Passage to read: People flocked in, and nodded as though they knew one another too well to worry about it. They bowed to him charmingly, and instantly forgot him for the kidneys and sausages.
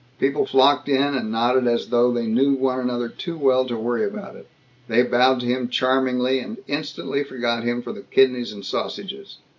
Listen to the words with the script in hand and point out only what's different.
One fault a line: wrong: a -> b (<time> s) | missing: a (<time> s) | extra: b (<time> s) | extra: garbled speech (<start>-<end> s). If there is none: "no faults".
no faults